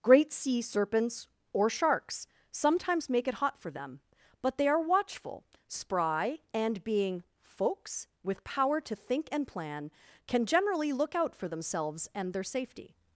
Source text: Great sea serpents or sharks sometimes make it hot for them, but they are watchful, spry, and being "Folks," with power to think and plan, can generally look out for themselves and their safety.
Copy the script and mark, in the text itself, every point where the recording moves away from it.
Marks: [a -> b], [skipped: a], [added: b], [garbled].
Great sea serpents or sharks sometimes make it hot for them, but they are watchful, spry, and being "Folks," with power to think and plan, can generally look out for themselves and their safety.